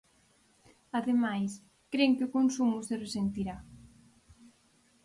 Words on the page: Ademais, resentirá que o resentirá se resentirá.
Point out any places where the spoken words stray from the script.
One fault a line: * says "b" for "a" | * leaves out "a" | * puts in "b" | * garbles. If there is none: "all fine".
* says "cren" for "resentirá"
* says "consumo" for "resentirá"